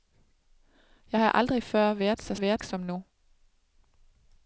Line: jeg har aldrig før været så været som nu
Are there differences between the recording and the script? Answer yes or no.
no